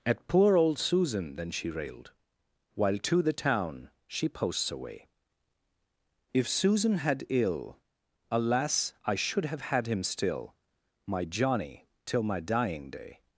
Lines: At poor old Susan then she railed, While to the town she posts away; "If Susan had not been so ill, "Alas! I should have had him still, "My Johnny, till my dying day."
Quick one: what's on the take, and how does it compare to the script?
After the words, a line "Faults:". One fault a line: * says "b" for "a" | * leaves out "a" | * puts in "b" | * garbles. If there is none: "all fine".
At poor old Susan then she railed, While to the town she posts away; "If Susan had ill, "Alas! I should have had him still, "My Johnny, till my dying day."
Faults:
* leaves out "not been so"